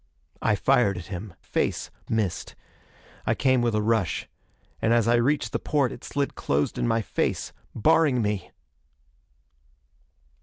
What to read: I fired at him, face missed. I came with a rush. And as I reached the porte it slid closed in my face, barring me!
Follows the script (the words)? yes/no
yes